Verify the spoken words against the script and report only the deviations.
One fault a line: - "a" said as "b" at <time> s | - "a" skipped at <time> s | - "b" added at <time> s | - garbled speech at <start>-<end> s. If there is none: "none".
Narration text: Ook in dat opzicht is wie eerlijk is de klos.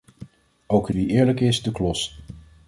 - "dat opzicht is" skipped at 0.9 s